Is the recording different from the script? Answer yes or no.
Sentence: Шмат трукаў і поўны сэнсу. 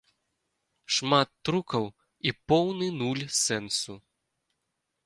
yes